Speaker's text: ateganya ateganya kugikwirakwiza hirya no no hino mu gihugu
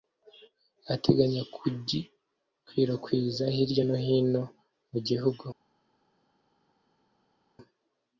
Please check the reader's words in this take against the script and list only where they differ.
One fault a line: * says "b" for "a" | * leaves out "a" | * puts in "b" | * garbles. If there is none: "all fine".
* leaves out "ateganya"
* leaves out "no"